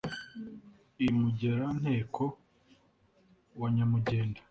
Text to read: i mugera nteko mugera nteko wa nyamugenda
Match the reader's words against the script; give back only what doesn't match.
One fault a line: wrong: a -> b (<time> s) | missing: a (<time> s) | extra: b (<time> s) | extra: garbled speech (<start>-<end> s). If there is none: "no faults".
missing: mugera nteko (2.2 s)